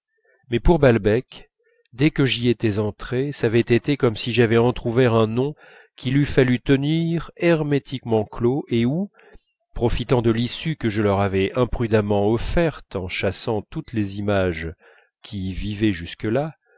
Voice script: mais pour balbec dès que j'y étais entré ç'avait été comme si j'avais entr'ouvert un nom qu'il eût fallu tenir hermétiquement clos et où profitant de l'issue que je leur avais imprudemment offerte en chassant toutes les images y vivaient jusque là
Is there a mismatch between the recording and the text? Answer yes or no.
yes